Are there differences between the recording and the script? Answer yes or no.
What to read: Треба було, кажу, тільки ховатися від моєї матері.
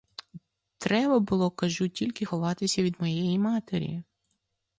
no